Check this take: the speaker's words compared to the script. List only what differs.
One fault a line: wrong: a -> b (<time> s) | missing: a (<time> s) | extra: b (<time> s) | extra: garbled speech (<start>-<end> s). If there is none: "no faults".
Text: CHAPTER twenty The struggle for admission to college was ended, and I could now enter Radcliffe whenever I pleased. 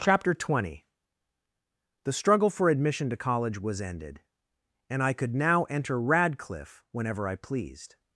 no faults